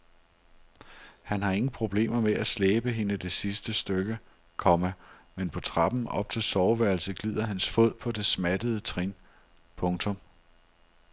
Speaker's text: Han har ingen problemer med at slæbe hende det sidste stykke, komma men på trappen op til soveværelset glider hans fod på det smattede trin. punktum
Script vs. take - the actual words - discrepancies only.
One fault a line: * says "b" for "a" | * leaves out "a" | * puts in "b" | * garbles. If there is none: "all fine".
all fine